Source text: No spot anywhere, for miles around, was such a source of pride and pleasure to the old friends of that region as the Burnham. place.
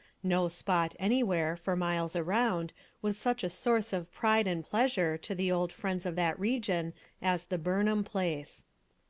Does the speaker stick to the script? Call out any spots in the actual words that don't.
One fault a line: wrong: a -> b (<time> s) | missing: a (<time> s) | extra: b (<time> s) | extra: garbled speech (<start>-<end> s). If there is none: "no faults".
no faults